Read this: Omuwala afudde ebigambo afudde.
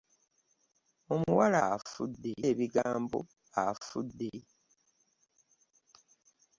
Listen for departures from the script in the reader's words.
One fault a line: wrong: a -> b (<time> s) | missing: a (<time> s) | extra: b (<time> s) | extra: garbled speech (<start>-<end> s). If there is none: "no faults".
no faults